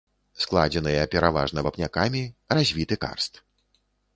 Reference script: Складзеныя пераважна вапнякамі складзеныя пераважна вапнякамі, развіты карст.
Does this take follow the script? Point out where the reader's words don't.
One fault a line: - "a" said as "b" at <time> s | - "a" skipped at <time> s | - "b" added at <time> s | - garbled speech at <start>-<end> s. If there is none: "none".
- "складзеныя пераважна вапнякамі" skipped at 2.2 s